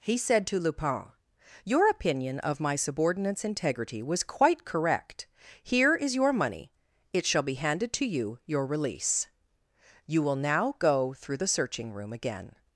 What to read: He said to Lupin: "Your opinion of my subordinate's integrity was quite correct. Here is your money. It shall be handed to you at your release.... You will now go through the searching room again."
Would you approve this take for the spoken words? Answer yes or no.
no